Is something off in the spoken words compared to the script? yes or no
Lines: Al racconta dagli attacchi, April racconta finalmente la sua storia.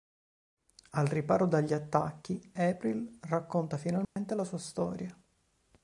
yes